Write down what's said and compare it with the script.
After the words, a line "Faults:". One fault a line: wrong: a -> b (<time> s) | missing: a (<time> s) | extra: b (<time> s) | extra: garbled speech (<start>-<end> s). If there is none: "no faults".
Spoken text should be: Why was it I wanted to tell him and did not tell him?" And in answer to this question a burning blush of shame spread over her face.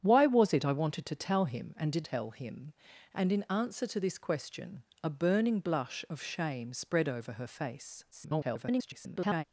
Why was it I wanted to tell him and did tell him?" And in answer to this question a burning blush of shame spread over her face. [garbled]
Faults:
missing: not (2.1 s)
extra: garbled speech (8.1-9.4 s)